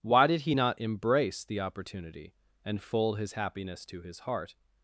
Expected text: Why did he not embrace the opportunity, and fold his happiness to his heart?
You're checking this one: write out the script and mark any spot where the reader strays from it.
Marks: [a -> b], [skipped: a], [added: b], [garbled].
Why did he not embrace the opportunity, and fold his happiness to his heart?